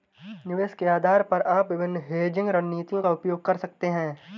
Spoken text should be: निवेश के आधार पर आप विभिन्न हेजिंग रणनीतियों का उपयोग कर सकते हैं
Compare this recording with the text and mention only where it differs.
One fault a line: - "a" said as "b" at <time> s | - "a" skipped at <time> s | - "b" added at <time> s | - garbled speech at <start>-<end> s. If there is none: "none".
none